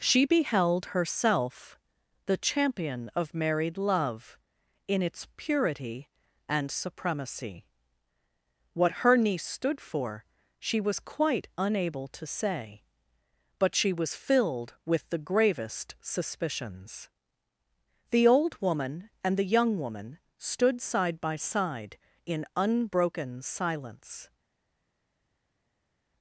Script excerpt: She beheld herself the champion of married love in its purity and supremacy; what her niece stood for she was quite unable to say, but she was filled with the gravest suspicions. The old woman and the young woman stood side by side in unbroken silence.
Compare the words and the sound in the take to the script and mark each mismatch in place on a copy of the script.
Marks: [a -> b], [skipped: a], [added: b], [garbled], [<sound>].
She beheld herself the champion of married love in its purity and supremacy; what her niece stood for she was quite unable to say, but she was filled with the gravest suspicions. The old woman and the young woman stood side by side in unbroken silence.